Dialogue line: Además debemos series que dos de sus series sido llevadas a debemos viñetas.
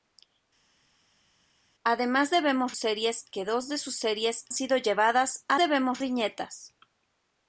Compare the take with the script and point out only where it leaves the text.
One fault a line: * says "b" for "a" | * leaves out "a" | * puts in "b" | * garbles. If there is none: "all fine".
all fine